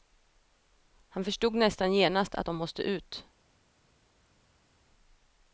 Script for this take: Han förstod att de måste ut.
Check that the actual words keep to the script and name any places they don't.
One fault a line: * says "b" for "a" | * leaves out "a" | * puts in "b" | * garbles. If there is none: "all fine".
* puts in "nästan genast"